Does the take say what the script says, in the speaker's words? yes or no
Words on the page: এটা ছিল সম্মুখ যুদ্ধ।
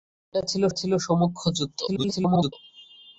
no